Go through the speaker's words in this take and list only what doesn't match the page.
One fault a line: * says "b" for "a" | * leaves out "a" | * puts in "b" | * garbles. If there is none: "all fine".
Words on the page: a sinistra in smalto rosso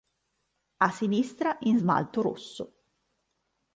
all fine